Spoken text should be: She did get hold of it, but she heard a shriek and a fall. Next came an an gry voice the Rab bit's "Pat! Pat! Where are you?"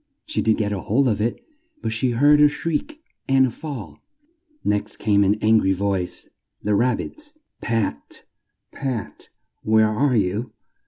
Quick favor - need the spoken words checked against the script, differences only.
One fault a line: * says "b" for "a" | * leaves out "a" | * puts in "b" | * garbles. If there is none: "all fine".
all fine